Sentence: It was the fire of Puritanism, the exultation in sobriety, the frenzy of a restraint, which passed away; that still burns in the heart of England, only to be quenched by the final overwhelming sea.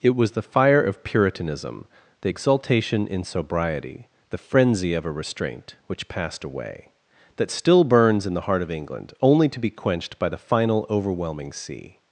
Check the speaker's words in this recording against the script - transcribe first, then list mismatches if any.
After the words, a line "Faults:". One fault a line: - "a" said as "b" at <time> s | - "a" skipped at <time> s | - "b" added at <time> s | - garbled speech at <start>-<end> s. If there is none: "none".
It was the fire of Puritanism, the exultation in sobriety, the frenzy of a restraint, which passed away; that still burns in the heart of England, only to be quenched by the final overwhelming sea.
Faults:
none